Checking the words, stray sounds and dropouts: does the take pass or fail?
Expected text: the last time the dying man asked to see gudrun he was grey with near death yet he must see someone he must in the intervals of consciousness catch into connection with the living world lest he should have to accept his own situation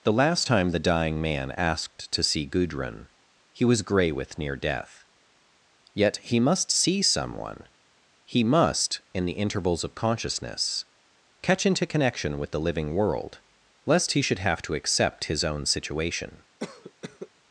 fail